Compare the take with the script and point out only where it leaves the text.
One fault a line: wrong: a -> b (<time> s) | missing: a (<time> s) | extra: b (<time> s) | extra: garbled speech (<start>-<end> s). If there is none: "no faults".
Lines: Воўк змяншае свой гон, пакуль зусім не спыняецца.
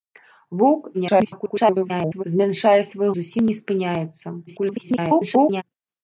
extra: garbled speech (0.9-2.2 s)
missing: гон пакуль (3.1 s)
extra: garbled speech (4.5-5.6 s)